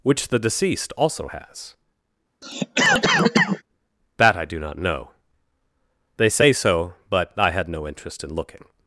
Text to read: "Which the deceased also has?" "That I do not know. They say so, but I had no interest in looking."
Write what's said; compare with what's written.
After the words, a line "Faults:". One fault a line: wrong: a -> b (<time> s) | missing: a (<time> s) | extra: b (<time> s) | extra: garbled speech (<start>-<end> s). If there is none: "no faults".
"Which the deceased also has?" "That I do not know. They say so, but I had no interest in looking."
Faults:
no faults